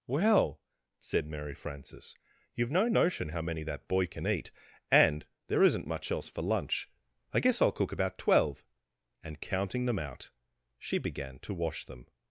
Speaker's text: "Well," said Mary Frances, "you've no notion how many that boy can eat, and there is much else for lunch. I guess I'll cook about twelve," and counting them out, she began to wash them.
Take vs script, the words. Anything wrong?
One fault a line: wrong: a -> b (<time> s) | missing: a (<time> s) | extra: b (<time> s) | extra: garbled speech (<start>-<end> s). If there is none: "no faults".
wrong: is -> isn't (5.6 s)